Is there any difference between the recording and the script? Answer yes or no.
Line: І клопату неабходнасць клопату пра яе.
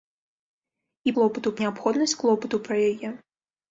no